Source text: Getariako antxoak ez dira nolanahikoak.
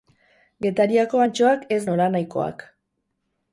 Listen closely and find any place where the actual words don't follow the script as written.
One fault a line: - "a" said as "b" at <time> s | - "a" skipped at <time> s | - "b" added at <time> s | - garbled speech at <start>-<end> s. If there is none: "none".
- "dira" skipped at 1.8 s